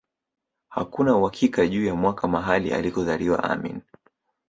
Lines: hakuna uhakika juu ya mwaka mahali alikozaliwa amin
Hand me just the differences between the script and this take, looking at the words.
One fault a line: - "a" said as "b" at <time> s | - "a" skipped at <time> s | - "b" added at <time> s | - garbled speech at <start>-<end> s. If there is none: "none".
none